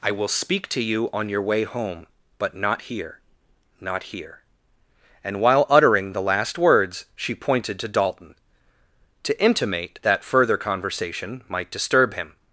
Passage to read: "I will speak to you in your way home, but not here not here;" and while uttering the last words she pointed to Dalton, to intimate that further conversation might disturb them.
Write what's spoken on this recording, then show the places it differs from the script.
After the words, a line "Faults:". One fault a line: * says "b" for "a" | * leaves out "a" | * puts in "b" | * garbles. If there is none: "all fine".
"I will speak to you on your way home, but not here not here;" and while uttering the last words she pointed to Dalton, to intimate that further conversation might disturb him.
Faults:
* says "on" for "in"
* says "him" for "them"